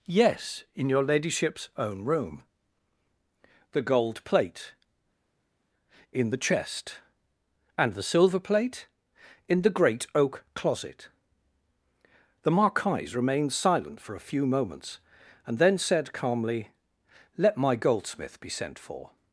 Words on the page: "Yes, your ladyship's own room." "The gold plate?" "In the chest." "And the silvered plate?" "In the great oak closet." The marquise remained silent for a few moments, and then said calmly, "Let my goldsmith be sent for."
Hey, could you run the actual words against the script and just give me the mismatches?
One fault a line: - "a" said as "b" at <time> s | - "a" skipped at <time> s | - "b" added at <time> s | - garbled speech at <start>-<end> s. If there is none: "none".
- "in" added at 0.7 s
- "silvered" said as "silver" at 8.0 s